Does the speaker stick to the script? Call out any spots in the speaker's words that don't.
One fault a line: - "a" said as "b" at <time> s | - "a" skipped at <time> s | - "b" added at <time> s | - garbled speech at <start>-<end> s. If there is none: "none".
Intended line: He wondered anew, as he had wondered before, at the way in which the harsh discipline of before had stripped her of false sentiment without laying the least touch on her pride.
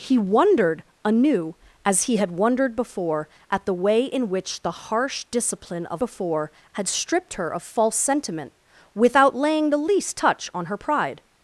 none